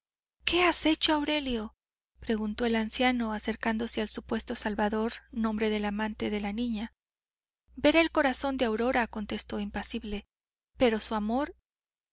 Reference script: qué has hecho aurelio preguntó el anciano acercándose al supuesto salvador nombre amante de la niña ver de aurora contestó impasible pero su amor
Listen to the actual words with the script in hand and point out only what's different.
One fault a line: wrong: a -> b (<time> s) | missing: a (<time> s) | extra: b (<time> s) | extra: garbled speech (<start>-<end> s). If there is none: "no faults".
extra: del (5.7 s)
extra: el corazón (8.0 s)